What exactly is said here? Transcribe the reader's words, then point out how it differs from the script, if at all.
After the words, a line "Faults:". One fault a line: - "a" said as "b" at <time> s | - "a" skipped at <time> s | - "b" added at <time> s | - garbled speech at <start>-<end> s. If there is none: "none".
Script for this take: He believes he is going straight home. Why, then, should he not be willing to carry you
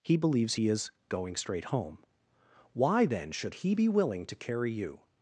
He believes he is going straight home. Why, then, should he be willing to carry you
Faults:
- "not" skipped at 3.7 s